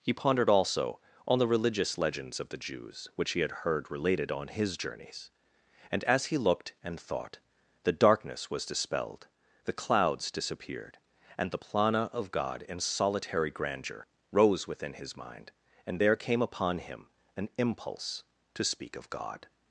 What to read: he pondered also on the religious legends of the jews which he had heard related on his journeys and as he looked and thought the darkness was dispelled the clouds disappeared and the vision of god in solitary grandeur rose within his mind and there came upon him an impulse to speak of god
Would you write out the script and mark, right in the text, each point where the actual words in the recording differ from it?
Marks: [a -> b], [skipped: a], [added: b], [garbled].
he pondered also on the religious legends of the jews which he had heard related on his journeys and as he looked and thought the darkness was dispelled the clouds disappeared and the [vision -> plana] of god in solitary grandeur rose within his mind and there came upon him an impulse to speak of god